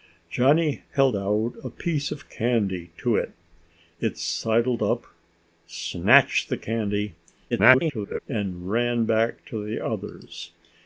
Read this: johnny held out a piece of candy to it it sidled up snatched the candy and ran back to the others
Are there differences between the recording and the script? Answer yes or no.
yes